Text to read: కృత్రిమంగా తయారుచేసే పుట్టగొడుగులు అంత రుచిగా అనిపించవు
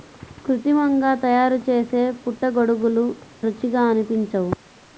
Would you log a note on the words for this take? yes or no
yes